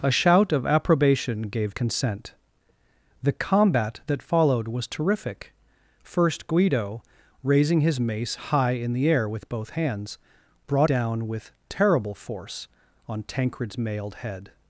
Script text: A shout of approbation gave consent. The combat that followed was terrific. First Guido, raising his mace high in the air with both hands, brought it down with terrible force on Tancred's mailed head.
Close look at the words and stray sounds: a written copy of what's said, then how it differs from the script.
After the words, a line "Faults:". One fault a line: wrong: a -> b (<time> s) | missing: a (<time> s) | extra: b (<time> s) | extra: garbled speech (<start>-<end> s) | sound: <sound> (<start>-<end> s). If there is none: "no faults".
A shout of approbation gave consent. The combat that followed was terrific. First Guido, raising his mace high in the air with both hands, brought down with terrible force on Tancred's mailed head.
Faults:
missing: it (10.9 s)